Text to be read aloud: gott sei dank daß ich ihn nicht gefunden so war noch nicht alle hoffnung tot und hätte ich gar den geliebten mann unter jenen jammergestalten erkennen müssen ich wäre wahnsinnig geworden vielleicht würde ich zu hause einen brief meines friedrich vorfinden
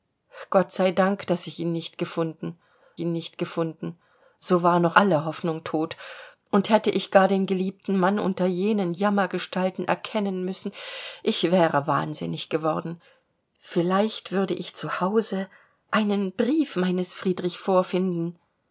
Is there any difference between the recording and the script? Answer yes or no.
yes